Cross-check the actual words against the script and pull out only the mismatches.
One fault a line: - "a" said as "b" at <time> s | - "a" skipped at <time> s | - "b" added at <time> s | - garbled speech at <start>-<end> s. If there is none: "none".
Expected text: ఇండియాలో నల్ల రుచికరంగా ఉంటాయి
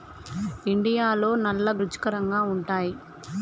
none